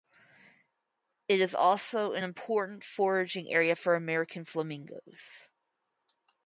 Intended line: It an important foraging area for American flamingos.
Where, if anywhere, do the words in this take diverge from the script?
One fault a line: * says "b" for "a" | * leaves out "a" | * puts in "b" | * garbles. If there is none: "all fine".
* puts in "is also"